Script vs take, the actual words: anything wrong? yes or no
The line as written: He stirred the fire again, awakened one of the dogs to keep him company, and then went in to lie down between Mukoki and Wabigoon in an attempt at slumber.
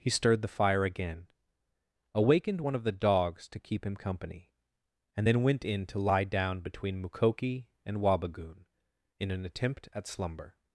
no